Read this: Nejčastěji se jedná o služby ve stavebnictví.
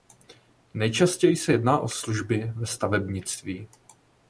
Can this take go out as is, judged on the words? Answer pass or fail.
pass